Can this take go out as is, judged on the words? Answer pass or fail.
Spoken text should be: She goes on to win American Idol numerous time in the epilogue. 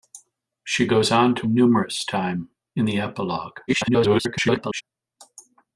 fail